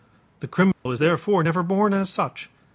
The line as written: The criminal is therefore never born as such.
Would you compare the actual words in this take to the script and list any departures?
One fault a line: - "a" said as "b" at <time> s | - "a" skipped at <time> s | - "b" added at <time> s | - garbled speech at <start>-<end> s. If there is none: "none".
none